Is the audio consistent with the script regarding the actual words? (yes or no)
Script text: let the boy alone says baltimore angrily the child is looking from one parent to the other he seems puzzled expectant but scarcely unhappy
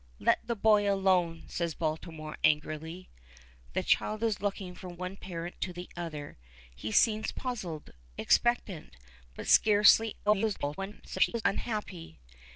no